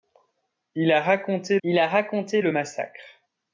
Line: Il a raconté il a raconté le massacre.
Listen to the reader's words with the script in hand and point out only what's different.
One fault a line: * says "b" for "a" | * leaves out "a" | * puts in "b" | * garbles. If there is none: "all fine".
all fine